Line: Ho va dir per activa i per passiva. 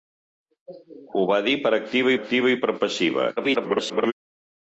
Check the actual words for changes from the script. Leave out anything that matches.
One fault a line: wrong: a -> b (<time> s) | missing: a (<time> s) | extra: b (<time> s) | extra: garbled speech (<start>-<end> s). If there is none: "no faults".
extra: activa (2.2 s)
extra: garbled speech (3.4-4.1 s)